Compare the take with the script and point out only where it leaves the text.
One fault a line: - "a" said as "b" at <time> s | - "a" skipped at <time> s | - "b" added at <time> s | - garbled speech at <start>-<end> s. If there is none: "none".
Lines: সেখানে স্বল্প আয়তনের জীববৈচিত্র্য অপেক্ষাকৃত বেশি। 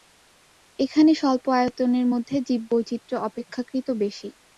- "সেখানে" said as "এখানে" at 0.8 s
- "মধ্যে" added at 2.1 s